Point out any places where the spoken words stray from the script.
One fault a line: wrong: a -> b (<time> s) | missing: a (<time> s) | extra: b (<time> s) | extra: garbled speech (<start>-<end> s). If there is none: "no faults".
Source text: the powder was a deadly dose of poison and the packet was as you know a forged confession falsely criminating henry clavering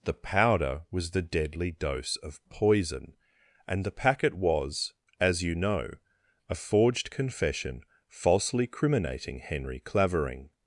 wrong: a -> the (1.1 s)